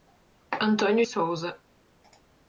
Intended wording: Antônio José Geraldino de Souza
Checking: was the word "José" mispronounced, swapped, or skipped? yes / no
yes